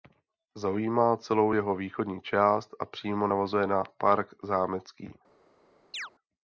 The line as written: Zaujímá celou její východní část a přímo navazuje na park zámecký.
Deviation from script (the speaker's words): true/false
true